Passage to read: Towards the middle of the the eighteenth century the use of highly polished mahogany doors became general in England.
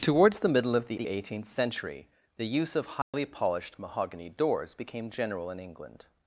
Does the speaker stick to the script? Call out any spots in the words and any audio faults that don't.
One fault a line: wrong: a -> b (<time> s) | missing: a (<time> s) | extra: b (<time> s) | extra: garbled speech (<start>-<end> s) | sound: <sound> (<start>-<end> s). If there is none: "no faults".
sound: dropout (3.0-3.1 s)